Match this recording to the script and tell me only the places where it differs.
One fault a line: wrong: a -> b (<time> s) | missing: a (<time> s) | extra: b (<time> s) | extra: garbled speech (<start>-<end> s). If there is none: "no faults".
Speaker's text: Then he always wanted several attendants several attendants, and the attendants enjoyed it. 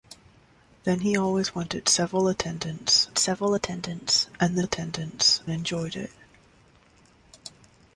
no faults